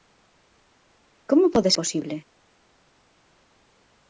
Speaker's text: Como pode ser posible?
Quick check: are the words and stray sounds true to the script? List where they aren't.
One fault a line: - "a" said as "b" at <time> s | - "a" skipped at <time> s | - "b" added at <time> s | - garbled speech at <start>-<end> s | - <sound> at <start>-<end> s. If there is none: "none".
- "ser" skipped at 1.7 s